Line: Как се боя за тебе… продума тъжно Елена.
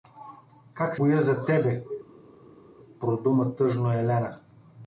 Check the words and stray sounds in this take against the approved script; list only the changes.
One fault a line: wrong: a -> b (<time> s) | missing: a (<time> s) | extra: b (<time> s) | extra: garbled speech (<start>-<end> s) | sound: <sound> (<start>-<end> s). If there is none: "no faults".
missing: се (1.0 s)